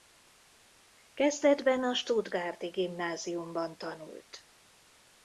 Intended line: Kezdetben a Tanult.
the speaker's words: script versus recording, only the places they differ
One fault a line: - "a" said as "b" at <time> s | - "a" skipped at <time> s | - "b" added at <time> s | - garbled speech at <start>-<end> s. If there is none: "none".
- "Stuttgarti Gimnáziumban" added at 1.9 s